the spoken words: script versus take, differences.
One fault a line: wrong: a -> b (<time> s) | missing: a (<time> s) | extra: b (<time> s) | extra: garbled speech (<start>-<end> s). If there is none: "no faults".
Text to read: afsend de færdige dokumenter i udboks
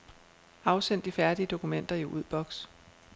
no faults